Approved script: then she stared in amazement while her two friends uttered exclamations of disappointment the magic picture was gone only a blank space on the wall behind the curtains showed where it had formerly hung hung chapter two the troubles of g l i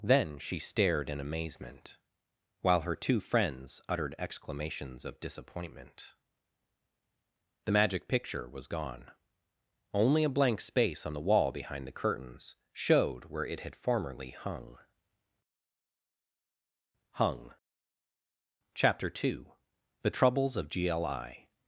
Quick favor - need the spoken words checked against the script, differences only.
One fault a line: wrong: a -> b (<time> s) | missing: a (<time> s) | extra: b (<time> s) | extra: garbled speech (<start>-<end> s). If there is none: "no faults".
no faults